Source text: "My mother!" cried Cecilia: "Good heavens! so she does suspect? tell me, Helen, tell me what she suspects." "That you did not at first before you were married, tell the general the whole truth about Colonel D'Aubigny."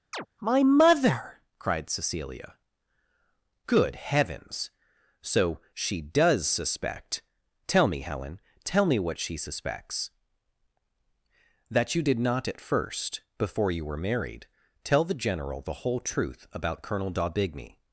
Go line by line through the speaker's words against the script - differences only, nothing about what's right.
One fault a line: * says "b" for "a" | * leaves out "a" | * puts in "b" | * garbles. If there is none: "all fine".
all fine